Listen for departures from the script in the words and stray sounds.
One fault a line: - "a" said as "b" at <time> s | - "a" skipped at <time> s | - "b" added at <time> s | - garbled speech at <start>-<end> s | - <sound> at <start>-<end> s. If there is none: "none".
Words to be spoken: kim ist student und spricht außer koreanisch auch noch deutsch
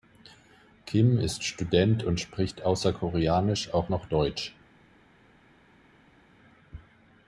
none